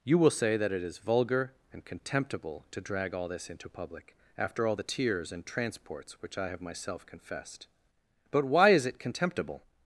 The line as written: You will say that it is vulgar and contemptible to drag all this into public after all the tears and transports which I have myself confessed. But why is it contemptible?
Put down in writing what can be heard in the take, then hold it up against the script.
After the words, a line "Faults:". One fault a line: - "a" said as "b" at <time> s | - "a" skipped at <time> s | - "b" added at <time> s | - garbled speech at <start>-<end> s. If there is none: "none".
You will say that it is vulgar and contemptible to drag all this into public after all the tears and transports which I have myself confessed. But why is it contemptible?
Faults:
none